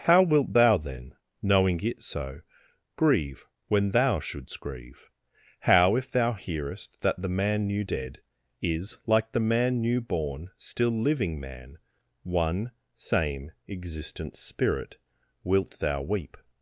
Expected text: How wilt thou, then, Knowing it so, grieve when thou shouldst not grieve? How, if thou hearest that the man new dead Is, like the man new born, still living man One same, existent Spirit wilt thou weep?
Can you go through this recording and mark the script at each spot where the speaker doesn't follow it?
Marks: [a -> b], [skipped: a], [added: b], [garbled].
How wilt thou, then, Knowing it so, grieve when thou shouldst [skipped: not] grieve? How, if thou hearest that the man new dead Is, like the man new born, still living man One same, existent Spirit wilt thou weep?